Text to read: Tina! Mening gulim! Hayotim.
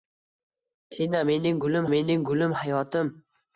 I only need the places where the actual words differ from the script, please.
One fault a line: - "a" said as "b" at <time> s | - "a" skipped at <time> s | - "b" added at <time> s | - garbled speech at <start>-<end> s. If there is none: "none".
- "mening gulim" added at 1.9 s